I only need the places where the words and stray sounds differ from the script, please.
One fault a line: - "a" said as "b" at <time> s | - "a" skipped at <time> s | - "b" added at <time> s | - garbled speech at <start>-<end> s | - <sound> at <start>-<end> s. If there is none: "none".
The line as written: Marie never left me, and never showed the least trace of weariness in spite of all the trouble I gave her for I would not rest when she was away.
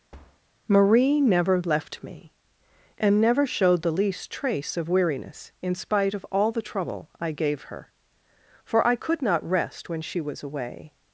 - thud at 0.1-0.4 s
- "would" said as "could" at 8.9 s